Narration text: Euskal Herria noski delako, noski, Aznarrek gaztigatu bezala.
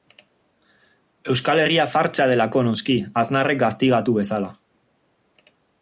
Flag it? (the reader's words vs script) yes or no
yes